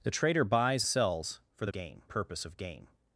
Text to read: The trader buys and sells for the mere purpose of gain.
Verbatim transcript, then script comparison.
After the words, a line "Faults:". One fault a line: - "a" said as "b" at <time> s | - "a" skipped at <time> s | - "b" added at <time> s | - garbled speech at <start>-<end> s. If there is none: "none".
The trader buys sells for the gain purpose of gain.
Faults:
- "and" skipped at 0.8 s
- "mere" said as "gain" at 1.7 s